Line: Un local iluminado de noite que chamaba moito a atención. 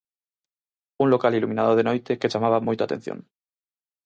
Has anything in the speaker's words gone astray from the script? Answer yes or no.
no